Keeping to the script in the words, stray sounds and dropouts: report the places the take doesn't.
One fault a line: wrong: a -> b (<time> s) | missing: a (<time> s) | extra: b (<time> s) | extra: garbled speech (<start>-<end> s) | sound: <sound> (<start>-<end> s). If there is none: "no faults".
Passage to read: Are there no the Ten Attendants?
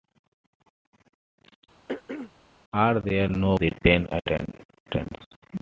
sound: throat clearing (1.9-2.3 s)